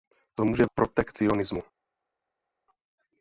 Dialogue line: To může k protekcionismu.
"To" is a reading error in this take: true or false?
false